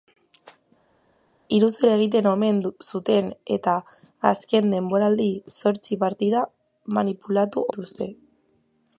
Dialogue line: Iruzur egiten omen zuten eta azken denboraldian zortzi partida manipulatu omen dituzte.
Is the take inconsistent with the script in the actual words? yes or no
yes